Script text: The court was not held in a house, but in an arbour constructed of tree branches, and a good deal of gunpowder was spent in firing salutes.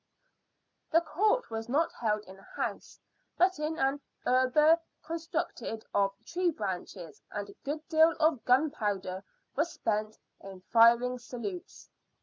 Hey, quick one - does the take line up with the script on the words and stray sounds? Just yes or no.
yes